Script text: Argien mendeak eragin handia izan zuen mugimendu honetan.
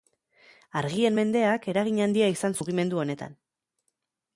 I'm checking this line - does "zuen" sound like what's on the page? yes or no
no